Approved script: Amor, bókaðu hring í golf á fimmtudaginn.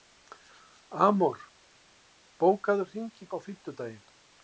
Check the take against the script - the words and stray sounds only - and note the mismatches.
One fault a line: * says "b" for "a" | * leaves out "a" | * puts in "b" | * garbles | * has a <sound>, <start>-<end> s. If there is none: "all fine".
* leaves out "golf"